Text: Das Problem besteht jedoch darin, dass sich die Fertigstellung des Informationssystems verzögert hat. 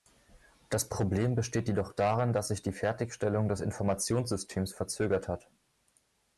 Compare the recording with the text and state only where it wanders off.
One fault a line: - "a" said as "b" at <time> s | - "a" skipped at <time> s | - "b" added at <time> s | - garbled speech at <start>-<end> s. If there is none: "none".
none